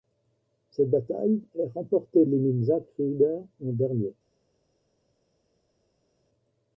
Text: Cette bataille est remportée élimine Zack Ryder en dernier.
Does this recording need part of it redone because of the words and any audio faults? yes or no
no